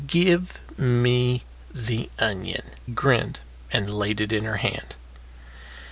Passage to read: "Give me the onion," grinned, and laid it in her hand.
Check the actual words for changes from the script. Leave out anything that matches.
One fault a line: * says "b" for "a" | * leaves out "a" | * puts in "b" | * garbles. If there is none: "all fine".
all fine